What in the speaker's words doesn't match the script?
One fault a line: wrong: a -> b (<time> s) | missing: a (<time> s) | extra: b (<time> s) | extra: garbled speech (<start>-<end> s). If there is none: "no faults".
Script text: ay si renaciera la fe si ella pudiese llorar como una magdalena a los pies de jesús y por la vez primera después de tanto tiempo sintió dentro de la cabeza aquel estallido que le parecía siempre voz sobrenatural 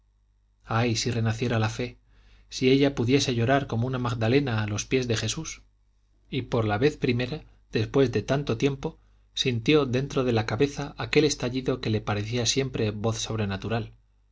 no faults